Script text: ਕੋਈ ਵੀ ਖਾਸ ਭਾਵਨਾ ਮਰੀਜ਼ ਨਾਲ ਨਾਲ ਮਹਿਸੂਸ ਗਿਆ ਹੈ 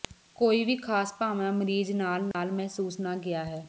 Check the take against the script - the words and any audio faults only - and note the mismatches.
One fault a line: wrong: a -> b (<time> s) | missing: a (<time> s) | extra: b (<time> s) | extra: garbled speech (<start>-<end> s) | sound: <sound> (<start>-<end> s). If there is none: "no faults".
sound: dropout (2.3-2.3 s)
extra: ਨਾ (3.0 s)